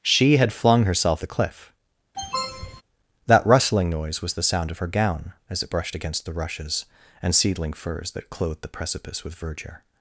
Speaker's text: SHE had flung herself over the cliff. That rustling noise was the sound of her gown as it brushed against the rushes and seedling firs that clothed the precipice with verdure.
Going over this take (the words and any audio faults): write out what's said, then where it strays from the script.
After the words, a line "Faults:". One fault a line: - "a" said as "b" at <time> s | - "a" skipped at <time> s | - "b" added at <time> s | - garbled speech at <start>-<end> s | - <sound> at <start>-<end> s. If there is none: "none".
SHE had flung herself the cliff. That rustling noise was the sound of her gown as it brushed against the rushes and seedling firs that clothed the precipice with verdure.
Faults:
- "over" skipped at 1.2 s
- sniff at 2.1-2.8 s